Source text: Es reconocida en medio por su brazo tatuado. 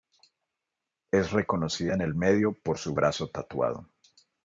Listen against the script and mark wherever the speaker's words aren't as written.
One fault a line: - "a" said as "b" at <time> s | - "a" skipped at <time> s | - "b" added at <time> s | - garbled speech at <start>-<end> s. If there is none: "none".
- "el" added at 2.0 s